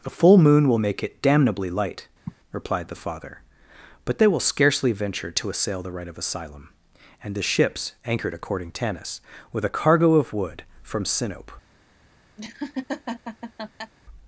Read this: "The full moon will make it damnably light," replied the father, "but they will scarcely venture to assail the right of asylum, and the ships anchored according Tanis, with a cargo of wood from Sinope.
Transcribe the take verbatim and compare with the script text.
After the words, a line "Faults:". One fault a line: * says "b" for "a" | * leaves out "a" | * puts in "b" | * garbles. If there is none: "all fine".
"The full moon will make it damnably light," replied the father, "but they will scarcely venture to assail the right of asylum, and the ships anchored according Tanis, with a cargo of wood from Sinope.
Faults:
all fine